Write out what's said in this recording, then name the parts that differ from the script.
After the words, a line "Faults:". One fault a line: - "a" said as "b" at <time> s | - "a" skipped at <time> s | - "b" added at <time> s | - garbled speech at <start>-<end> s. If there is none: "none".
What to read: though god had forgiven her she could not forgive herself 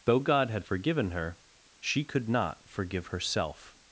though god had forgiven her she could not forgive herself
Faults:
none